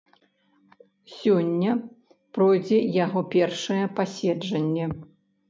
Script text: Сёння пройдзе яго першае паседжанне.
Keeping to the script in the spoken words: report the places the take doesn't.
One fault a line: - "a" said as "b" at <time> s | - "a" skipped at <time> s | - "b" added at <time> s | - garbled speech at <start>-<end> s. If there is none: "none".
none